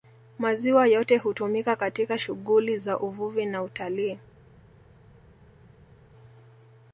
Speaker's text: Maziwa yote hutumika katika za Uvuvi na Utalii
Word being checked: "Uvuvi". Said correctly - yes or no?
yes